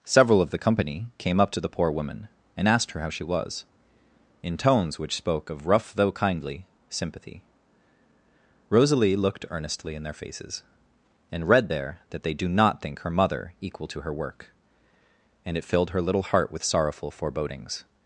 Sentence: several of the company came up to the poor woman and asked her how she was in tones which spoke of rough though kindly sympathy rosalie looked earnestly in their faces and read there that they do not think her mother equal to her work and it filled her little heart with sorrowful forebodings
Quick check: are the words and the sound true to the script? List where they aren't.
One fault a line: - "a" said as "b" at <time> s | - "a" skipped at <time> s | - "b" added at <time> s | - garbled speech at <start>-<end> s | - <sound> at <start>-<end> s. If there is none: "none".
none